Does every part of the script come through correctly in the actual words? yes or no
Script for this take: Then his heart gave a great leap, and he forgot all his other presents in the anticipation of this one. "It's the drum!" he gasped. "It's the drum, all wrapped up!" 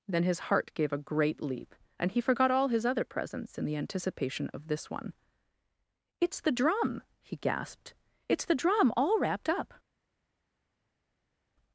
yes